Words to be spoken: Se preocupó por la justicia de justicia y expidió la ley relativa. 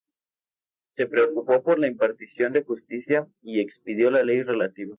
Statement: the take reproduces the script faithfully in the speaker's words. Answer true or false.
false